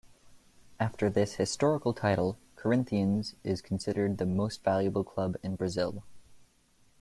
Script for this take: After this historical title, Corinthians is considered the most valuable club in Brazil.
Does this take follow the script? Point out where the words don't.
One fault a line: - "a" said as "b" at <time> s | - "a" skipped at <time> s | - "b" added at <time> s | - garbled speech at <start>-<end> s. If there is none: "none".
none